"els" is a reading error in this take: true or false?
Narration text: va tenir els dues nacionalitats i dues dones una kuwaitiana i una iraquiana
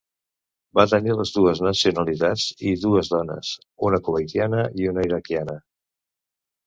true